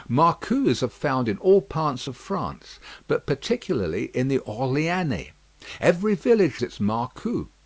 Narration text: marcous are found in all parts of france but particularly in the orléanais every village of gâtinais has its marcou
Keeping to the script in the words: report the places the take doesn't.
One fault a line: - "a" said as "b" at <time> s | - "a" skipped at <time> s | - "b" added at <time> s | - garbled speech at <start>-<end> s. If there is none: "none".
- "of gâtinais has" skipped at 6.6 s